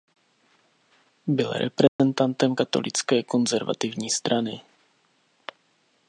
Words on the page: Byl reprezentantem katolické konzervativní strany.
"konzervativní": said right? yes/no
yes